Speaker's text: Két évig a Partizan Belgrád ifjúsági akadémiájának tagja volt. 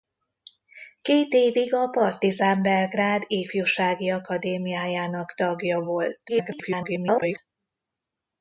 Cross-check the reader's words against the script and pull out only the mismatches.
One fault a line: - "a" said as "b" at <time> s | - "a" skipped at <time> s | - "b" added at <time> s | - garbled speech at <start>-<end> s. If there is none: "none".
- garbled speech at 6.3-7.4 s